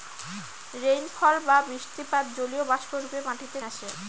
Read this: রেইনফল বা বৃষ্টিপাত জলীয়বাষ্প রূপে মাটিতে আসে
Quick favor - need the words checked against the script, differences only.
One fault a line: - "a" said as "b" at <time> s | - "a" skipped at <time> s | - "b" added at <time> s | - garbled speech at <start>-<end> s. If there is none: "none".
none